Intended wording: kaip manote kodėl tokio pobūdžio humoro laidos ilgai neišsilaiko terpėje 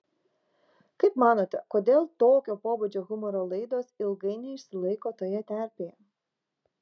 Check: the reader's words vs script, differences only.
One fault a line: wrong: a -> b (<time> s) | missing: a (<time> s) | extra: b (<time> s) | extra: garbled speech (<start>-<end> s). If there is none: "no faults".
extra: toje (5.2 s)